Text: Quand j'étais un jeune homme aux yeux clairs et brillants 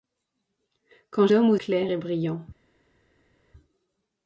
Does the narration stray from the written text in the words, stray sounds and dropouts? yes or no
yes